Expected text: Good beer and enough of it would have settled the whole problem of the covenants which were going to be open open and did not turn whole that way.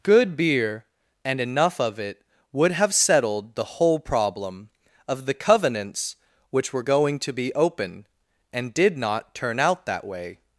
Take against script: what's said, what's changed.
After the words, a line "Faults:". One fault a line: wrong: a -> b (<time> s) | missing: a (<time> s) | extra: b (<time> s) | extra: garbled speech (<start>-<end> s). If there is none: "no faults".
Good beer and enough of it would have settled the whole problem of the covenants which were going to be open and did not turn out that way.
Faults:
missing: open (8.1 s)
wrong: whole -> out (9.6 s)